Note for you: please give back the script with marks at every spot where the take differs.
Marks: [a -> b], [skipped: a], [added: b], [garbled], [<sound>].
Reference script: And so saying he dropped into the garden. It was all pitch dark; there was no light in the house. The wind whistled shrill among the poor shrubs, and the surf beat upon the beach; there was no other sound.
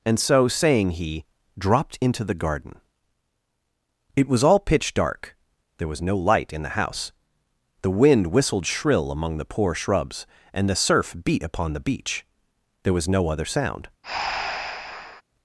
And so saying he dropped into the garden. It was all pitch dark; there was no light in the house. The wind whistled shrill among the poor shrubs, and the surf beat upon the beach; there was no other sound. [breath]